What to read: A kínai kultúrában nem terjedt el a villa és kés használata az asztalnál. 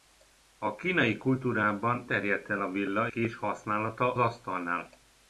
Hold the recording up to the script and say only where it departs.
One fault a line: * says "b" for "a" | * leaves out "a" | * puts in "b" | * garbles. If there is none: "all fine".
* leaves out "nem"
* leaves out "és"
* leaves out "az"